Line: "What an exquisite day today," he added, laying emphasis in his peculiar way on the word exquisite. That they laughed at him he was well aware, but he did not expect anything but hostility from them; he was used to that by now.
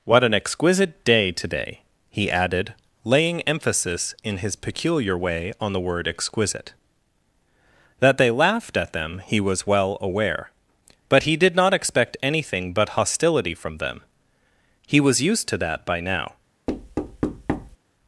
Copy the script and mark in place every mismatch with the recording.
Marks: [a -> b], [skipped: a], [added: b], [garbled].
"What an exquisite day today," he added, laying emphasis in his peculiar way on the word exquisite. That they laughed at [him -> them] he was well aware, but he did not expect anything but hostility from them; he was used to that by now.